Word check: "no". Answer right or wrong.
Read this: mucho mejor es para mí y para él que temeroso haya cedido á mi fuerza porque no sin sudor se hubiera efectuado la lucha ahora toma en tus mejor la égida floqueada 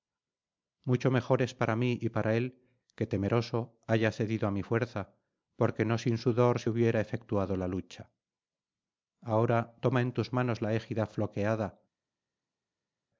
right